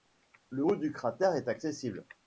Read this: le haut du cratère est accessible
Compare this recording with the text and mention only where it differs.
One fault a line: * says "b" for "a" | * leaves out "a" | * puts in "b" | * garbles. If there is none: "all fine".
all fine